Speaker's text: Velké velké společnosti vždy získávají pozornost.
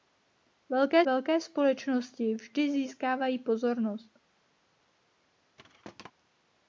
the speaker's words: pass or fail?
pass